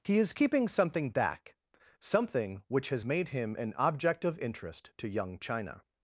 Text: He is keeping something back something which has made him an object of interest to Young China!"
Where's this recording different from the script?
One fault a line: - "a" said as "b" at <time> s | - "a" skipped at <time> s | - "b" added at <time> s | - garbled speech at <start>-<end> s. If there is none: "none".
none